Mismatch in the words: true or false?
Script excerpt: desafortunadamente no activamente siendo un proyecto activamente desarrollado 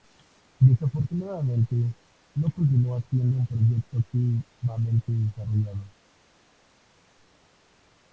true